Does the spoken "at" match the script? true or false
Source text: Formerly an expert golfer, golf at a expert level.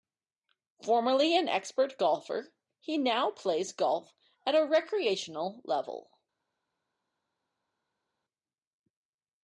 true